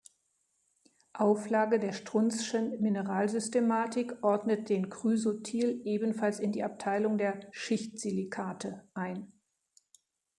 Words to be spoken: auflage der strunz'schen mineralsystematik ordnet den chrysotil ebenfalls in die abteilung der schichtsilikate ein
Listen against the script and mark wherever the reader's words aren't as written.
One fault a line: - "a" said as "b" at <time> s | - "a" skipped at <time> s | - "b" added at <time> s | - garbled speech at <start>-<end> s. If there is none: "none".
none